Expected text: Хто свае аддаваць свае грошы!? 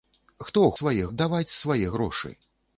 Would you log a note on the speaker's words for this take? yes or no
no